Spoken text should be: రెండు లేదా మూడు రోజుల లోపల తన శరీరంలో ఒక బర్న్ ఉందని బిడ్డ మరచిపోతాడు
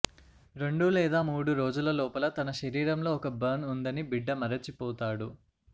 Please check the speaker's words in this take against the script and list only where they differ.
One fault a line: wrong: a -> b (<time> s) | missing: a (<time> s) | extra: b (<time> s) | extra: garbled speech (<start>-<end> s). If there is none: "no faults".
no faults